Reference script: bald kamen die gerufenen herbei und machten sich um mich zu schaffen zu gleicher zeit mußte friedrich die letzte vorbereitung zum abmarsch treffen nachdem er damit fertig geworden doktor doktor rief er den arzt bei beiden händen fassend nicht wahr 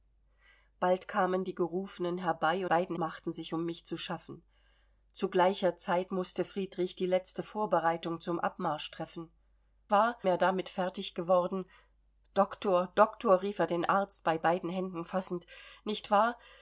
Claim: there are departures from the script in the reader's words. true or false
true